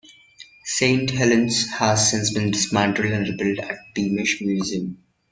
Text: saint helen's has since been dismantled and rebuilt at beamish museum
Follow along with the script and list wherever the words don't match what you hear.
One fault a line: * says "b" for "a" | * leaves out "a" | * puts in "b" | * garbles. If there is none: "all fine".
all fine